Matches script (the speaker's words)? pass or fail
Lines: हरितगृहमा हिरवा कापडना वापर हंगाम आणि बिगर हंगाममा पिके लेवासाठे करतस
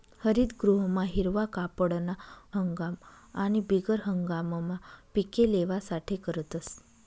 fail